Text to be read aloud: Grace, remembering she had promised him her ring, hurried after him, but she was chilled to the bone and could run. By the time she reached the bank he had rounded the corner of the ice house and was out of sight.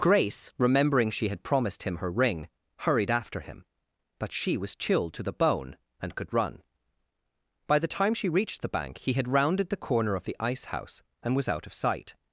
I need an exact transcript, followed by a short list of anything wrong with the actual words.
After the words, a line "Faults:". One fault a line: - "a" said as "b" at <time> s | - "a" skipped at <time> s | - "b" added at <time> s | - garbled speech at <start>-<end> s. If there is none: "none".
Grace, remembering she had promised him her ring, hurried after him, but she was chilled to the bone and could run. By the time she reached the bank he had rounded the corner of the ice house and was out of sight.
Faults:
none